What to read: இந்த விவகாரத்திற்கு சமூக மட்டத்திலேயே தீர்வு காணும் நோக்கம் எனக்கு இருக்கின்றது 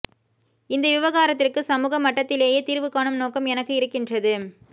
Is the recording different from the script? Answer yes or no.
no